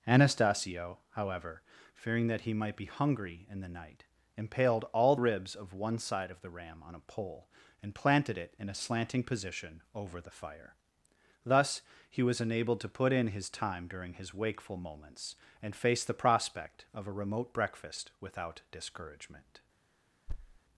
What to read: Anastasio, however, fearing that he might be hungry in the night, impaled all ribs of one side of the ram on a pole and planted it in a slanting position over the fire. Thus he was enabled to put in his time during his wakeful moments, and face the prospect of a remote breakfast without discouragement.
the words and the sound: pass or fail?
fail